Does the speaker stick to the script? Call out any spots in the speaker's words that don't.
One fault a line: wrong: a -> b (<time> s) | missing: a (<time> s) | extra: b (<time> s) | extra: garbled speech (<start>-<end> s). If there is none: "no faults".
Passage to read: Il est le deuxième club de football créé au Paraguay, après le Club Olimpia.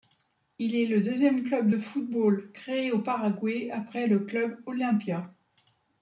no faults